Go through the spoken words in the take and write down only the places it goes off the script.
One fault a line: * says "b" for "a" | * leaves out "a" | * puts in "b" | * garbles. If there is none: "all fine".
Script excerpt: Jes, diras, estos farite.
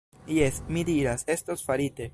* puts in "mi"